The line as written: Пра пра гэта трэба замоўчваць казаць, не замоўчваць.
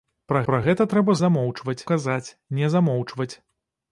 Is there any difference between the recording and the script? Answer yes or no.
no